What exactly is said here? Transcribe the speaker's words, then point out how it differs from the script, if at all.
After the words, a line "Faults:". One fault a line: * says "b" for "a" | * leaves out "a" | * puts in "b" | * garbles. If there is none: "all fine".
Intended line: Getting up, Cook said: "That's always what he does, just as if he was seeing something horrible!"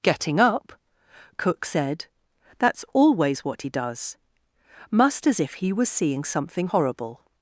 Getting up, Cook said: "That's always what he does, must as if he was seeing something horrible!"
Faults:
* says "must" for "just"